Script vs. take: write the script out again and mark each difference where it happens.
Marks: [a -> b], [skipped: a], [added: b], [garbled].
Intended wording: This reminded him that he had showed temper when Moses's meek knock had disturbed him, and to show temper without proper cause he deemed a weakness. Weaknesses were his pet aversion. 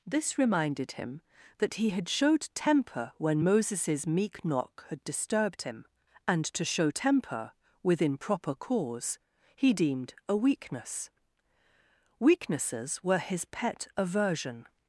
This reminded him that he had showed temper when Moses's meek knock had disturbed him, and to show temper [without -> within] proper cause he deemed a weakness. Weaknesses were his pet aversion.